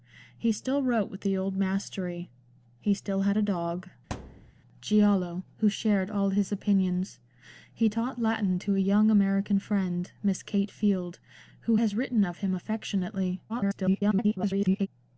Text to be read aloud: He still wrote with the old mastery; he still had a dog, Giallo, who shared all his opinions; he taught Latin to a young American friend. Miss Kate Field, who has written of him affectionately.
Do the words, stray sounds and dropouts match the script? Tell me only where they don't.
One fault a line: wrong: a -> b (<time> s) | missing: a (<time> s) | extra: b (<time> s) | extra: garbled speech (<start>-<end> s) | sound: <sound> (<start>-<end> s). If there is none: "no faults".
sound: thud (4.1-4.5 s)
extra: garbled speech (13.5-14.9 s)